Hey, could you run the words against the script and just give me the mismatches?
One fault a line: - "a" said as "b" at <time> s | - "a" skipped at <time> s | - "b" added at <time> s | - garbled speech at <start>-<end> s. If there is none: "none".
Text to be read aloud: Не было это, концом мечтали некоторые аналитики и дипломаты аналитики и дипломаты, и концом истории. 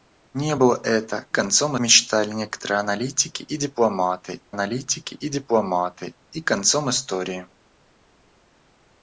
none